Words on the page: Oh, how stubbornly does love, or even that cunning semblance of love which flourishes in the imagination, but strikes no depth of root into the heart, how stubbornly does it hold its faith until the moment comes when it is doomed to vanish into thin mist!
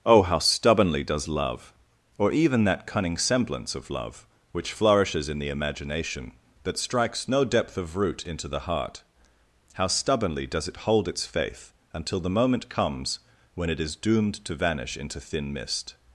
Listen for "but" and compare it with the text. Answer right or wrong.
wrong